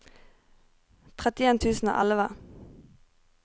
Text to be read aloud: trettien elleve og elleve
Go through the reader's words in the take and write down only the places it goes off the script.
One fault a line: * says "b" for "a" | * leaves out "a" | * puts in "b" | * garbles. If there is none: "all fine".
* says "tusen" for "elleve"